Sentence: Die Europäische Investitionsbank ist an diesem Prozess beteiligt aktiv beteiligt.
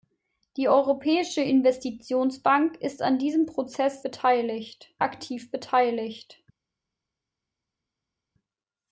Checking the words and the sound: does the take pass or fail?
pass